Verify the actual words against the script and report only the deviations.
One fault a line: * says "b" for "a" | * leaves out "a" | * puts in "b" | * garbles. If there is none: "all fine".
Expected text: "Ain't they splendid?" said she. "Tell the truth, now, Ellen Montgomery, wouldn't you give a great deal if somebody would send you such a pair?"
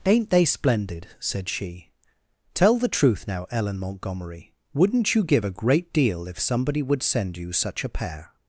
all fine